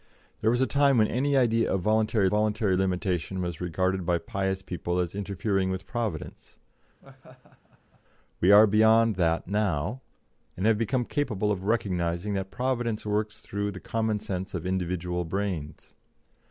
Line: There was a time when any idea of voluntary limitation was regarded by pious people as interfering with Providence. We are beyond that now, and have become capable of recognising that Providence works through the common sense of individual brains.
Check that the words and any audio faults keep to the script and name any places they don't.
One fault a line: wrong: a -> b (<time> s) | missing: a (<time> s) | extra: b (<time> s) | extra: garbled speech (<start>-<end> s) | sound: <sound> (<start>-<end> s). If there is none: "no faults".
extra: voluntary (2.3 s)
sound: laugh (7.0-8.0 s)